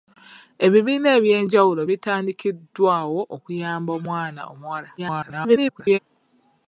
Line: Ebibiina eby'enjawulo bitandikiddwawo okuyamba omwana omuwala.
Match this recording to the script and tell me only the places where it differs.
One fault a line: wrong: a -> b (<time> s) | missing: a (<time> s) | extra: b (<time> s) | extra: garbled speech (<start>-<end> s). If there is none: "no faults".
extra: garbled speech (5.0-6.0 s)